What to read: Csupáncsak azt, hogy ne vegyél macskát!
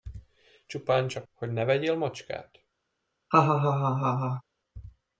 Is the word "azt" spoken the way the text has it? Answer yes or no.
no